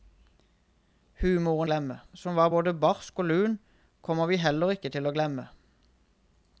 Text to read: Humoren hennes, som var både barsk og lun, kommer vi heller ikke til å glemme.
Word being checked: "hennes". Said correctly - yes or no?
no